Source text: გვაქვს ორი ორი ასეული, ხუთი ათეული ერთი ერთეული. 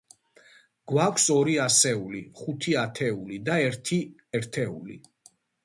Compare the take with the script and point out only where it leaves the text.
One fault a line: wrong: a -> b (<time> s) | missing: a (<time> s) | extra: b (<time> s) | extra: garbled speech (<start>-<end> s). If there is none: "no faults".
missing: ორი (1.6 s)
extra: და (3.5 s)